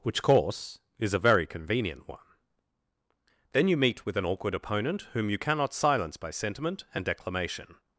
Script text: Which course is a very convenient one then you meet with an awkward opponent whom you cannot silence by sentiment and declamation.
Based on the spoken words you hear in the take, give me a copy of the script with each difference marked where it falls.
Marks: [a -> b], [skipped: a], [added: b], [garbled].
Which course is a very convenient one then you meet with an awkward opponent whom you cannot silence by sentiment and declamation.